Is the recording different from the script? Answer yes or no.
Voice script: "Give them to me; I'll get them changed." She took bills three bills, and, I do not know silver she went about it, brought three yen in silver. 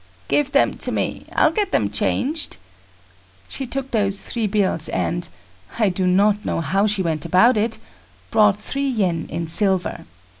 yes